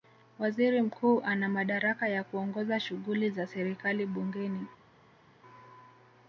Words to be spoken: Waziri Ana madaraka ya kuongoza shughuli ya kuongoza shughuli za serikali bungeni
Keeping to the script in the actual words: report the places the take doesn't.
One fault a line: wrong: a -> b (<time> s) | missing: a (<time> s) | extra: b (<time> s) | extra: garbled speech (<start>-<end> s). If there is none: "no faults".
extra: Mkuu (0.8 s)
missing: ya kuongoza shughuli (3.3 s)